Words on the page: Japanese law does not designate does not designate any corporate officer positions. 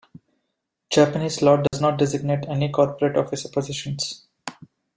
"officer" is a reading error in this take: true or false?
false